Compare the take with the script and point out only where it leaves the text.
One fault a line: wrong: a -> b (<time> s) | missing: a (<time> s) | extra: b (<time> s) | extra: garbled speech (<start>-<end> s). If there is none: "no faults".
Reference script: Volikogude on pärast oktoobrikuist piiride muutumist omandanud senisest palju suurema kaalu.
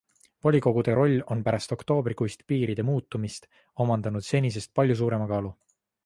extra: roll (1.0 s)